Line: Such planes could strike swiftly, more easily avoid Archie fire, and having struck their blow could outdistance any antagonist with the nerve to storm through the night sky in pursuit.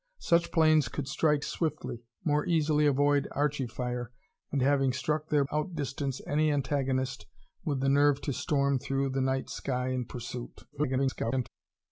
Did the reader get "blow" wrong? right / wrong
wrong